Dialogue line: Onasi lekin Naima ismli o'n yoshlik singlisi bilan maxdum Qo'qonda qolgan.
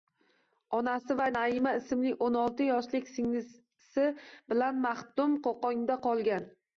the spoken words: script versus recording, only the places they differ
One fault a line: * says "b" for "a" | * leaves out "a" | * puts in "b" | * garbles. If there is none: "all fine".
* says "va" for "lekin"
* puts in "olti"